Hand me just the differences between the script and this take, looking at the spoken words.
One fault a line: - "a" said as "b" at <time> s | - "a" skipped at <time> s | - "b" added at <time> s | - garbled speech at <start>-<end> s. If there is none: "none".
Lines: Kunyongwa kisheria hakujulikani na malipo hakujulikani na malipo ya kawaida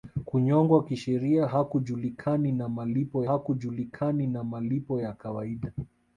none